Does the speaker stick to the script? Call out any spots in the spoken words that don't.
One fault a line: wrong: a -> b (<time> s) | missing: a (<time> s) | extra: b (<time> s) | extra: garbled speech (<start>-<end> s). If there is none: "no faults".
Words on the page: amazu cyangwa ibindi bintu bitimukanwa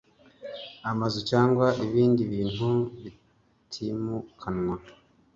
no faults